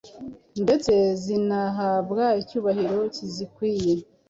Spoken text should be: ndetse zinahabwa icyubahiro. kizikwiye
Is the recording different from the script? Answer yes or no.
no